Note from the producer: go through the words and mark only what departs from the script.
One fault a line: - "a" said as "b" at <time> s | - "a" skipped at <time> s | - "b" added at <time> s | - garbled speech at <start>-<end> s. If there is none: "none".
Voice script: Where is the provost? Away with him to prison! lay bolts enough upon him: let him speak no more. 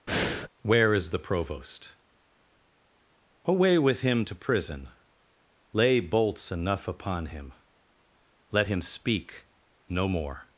none